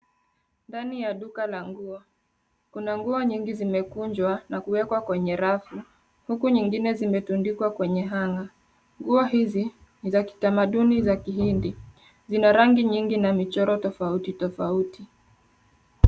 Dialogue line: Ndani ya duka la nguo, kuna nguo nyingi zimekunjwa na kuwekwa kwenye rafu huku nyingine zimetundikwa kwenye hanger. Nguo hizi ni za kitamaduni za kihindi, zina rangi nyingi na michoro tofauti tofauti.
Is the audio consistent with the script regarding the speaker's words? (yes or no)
yes